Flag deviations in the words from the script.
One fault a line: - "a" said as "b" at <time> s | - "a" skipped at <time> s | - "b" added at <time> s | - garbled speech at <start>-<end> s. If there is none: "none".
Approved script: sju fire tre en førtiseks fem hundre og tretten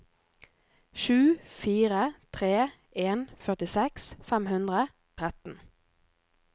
- "og" skipped at 4.8 s